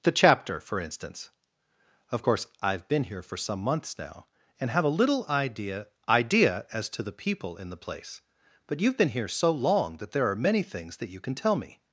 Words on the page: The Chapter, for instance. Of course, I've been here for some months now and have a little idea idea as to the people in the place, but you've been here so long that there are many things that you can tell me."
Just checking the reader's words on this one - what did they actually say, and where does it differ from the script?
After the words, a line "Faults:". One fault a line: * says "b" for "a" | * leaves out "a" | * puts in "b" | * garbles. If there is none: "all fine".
The Chapter, for instance. Of course, I've been here for some months now and have a little idea idea as to the people in the place, but you've been here so long that there are many things that you can tell me."
Faults:
all fine